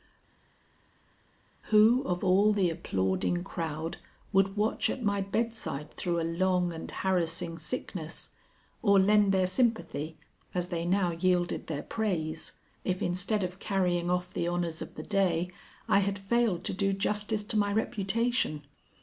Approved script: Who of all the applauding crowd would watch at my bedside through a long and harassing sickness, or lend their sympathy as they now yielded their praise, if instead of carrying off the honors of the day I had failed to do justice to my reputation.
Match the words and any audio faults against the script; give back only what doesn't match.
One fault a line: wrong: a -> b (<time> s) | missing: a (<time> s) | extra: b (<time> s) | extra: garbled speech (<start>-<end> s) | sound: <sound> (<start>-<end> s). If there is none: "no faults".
no faults